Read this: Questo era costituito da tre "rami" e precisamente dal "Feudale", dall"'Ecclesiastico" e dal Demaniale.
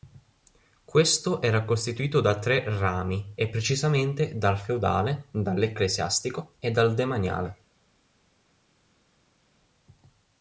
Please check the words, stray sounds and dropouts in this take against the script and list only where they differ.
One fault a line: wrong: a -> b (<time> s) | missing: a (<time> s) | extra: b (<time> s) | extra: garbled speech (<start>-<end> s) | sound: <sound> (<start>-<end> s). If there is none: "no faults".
no faults